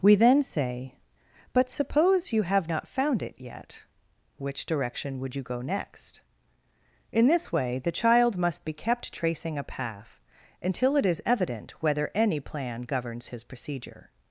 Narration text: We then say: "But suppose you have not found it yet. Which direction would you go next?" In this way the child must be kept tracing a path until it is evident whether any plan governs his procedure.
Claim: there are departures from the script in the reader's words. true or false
false